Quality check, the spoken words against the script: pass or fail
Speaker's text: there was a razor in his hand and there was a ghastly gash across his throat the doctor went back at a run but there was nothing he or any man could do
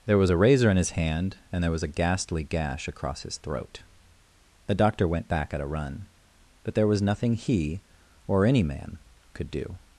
pass